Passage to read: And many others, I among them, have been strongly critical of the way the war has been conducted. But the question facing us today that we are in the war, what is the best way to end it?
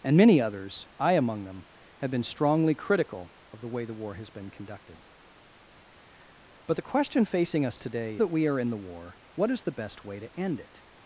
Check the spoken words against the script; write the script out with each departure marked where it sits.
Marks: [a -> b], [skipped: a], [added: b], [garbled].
And many others, I among them, have been strongly critical of the way the war has been conducted. But the question facing us today that we are in the war, what is the best way to end it?